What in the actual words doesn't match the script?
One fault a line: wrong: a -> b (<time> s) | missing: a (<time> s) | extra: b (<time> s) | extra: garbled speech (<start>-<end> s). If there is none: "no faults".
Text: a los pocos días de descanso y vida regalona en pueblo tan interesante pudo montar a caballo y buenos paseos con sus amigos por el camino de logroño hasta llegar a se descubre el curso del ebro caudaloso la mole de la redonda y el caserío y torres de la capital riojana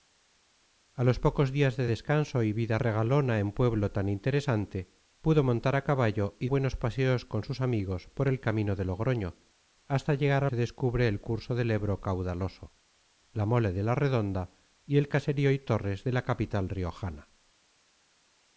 no faults